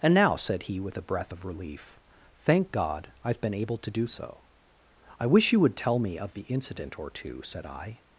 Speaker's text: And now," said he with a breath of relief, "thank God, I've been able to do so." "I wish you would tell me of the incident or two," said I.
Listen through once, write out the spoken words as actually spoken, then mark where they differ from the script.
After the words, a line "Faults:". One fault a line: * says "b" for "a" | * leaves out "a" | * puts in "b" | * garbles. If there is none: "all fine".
And now," said he with a breath of relief, "thank God, I've been able to do so." "I wish you would tell me of the incident or two," said I.
Faults:
all fine